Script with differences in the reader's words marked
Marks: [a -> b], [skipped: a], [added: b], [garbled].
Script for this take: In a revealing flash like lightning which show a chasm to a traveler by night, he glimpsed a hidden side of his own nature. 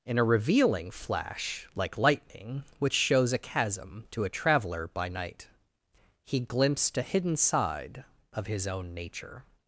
In a revealing flash like lightning which [show -> shows] a chasm to a traveler by night, he glimpsed a hidden side of his own nature.